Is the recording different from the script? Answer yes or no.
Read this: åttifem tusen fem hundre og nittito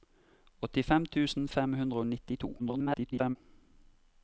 yes